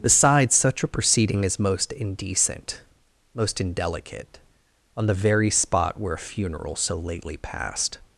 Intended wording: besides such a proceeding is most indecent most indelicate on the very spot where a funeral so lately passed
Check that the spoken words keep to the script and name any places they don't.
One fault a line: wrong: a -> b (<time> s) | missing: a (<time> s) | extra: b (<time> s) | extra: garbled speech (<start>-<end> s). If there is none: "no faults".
no faults